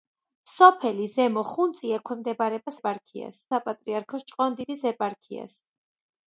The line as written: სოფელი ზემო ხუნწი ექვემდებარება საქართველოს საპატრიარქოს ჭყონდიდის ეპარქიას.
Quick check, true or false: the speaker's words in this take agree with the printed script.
false